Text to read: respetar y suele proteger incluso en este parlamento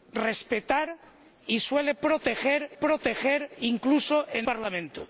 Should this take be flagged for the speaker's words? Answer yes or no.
yes